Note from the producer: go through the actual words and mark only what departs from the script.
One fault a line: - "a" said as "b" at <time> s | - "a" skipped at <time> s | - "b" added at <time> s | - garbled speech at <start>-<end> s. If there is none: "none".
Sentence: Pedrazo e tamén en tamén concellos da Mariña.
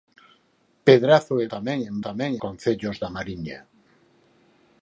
none